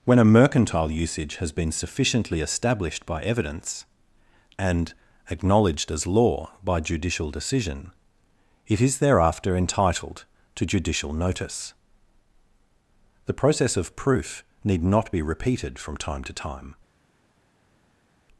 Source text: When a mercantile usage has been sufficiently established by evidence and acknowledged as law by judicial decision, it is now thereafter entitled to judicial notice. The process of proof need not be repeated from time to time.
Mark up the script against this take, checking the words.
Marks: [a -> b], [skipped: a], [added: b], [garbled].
When a mercantile usage has been sufficiently established by evidence and acknowledged as law by judicial decision, it is [skipped: now] thereafter entitled to judicial notice. The process of proof need not be repeated from time to time.